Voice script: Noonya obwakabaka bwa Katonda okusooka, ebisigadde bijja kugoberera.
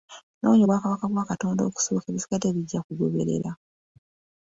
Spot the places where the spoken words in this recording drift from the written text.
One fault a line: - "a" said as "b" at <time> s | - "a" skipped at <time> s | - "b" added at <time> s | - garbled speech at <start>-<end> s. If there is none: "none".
none